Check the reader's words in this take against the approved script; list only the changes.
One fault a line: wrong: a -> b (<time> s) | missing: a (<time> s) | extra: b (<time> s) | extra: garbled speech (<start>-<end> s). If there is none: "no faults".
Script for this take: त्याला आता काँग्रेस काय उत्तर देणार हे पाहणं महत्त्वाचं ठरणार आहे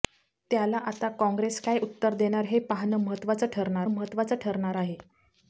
extra: महत्त्वाचं ठरणार (3.9 s)